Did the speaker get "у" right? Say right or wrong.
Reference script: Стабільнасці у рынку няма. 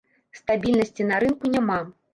wrong